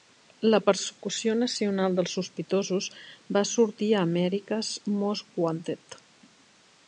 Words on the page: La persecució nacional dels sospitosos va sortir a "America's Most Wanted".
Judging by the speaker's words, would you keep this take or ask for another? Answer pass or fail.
pass